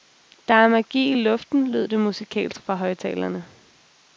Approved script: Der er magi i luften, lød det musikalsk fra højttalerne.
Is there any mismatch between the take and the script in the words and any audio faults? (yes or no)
no